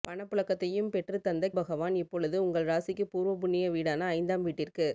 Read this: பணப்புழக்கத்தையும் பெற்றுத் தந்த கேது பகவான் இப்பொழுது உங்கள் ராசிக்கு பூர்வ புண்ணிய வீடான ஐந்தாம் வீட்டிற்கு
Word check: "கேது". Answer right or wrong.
wrong